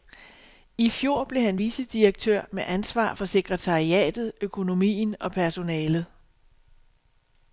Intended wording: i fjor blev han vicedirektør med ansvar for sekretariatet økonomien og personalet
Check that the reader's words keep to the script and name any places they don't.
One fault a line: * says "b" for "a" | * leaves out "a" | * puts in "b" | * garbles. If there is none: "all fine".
all fine